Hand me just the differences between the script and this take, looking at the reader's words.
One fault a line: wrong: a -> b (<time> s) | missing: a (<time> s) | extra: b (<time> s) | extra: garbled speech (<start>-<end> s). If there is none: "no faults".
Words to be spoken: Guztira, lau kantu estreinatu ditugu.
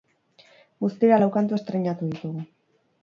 no faults